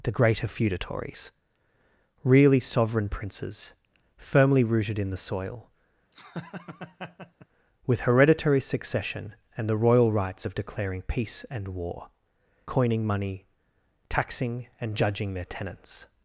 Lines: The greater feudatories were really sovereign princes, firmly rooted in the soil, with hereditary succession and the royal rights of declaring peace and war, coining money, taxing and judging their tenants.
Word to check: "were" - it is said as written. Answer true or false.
false